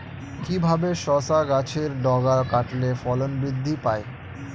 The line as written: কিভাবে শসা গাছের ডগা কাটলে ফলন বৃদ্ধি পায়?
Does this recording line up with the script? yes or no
yes